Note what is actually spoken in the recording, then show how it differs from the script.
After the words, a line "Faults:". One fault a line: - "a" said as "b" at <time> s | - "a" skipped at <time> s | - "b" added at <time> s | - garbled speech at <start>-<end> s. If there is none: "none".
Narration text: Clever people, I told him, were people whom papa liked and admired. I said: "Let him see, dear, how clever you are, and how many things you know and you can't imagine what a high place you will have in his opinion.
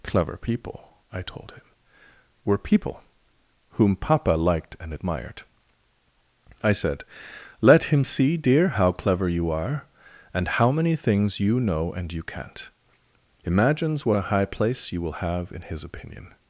Clever people, I told him, were people whom papa liked and admired. I said: "Let him see, dear, how clever you are, and how many things you know and you can't imagines what a high place you will have in his opinion.
Faults:
- "imagine" said as "imagines" at 13.4 s